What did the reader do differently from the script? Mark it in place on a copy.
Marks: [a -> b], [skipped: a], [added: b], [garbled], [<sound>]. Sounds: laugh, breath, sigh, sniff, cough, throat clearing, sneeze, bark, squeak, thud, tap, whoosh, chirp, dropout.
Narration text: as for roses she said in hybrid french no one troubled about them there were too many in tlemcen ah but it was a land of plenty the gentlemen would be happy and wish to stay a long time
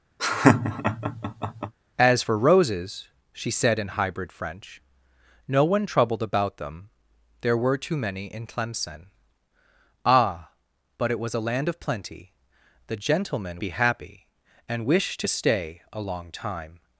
[laugh] as for roses she said in hybrid french no one troubled about them there were too many in tlemcen ah but it was a land of plenty the gentlemen [skipped: would] be happy and wish to stay a long time